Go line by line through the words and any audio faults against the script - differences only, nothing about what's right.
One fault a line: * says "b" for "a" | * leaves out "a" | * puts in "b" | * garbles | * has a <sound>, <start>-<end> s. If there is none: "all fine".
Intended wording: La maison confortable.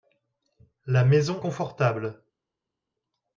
all fine